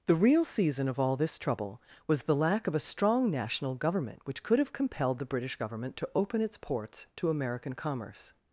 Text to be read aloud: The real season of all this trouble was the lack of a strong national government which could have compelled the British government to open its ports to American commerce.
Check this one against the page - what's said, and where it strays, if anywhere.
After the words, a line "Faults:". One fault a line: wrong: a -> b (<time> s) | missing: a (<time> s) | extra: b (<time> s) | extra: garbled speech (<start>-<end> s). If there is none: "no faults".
The real season of all this trouble was the lack of a strong national government which could have compelled the British government to open its ports to American commerce.
Faults:
no faults